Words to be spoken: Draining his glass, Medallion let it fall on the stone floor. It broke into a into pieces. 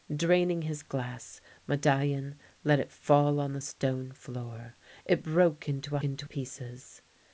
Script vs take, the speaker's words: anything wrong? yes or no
no